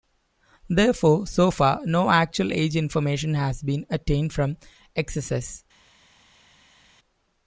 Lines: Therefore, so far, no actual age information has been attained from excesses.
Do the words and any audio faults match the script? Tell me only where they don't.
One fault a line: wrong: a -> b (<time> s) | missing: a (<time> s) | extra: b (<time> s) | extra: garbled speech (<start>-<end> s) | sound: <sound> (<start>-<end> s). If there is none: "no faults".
no faults